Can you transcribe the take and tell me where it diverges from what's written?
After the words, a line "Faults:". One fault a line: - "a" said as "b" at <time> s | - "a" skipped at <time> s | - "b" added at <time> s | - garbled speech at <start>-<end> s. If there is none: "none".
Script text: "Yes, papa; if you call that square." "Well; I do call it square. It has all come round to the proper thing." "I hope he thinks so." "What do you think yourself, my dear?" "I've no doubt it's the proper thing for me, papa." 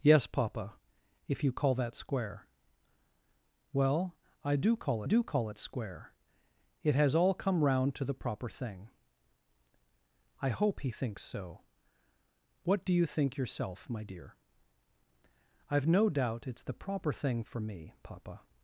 "Yes, papa; if you call that square." "Well; I do call do call it square. It has all come round to the proper thing." "I hope he thinks so." "What do you think yourself, my dear?" "I've no doubt it's the proper thing for me, papa."
Faults:
- "do call" added at 5.0 s